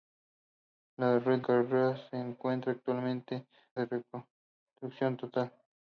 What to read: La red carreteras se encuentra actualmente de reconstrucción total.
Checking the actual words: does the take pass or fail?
pass